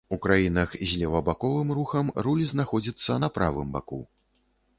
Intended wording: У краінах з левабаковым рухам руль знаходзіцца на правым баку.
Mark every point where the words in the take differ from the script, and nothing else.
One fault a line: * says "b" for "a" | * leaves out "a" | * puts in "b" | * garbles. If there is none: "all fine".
all fine